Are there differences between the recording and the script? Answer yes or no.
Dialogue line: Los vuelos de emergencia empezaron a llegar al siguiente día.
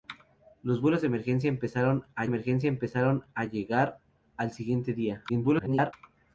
yes